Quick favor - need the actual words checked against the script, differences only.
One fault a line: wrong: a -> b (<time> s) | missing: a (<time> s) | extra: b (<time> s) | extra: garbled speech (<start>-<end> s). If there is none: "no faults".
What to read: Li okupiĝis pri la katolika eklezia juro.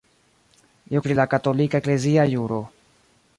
missing: okupiĝis (1.0 s)